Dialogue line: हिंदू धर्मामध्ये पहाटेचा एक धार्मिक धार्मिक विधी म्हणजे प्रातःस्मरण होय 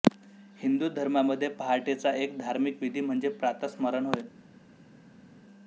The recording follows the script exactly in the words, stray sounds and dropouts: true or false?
false